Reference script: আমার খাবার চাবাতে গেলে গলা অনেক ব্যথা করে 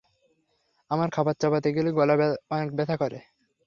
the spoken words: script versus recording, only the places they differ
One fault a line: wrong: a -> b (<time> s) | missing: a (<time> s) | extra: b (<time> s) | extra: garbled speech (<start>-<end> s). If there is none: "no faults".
no faults